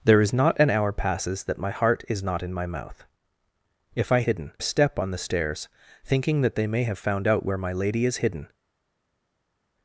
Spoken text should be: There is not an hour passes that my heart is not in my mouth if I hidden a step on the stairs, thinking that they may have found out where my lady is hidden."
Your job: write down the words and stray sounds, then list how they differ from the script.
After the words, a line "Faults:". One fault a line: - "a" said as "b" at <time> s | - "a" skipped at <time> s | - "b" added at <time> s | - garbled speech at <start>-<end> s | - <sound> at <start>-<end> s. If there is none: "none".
There is not an hour passes that my heart is not in my mouth if I hidden a step on the stairs, thinking that they may have found out where my lady is hidden."
Faults:
none